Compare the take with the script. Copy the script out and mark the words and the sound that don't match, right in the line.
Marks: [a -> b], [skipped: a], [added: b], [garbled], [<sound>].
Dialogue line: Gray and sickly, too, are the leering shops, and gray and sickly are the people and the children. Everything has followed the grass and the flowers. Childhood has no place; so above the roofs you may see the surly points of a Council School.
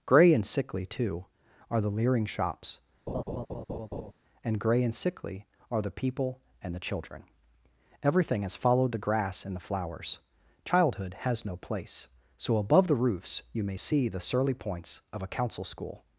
Gray and sickly, too, are the leering shops, [laugh] and gray and sickly are the people and the children. Everything has followed the grass and the flowers. Childhood has no place; so above the roofs you may see the surly points of a Council School.